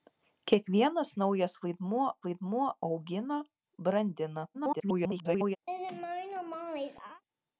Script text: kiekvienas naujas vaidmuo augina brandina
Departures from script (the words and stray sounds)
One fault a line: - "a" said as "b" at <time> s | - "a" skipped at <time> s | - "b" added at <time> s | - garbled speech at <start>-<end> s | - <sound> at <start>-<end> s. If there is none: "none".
- "vaidmuo" added at 2.3 s
- garbled speech at 4.5-5.6 s
- laugh at 5.7-7.2 s